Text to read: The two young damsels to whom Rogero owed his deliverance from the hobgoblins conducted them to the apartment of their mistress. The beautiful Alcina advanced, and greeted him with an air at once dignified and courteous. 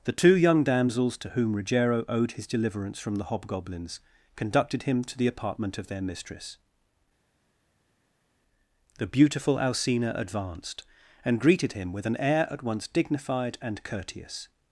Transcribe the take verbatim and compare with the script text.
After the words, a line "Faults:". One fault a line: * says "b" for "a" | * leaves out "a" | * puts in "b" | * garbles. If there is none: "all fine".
The two young damsels to whom Rogero owed his deliverance from the hobgoblins conducted him to the apartment of their mistress. The beautiful Alcina advanced, and greeted him with an air at once dignified and courteous.
Faults:
* says "him" for "them"